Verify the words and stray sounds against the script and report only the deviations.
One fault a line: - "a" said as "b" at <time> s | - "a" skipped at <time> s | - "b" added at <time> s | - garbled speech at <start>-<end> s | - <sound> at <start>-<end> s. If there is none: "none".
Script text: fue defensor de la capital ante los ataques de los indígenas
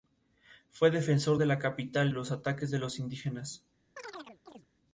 - "ante" skipped at 2.1 s
- chirp at 4.0-4.7 s